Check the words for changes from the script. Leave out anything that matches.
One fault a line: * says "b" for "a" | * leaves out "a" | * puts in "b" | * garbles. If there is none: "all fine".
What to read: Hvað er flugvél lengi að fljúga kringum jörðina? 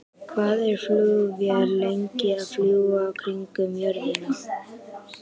all fine